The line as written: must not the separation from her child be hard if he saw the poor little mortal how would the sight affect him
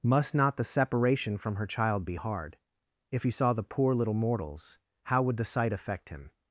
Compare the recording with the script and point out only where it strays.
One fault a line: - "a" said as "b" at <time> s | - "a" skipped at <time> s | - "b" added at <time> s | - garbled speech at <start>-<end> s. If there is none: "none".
- "mortal" said as "mortals" at 4.1 s